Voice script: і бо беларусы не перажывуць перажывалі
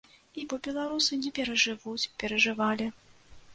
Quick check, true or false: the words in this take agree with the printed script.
true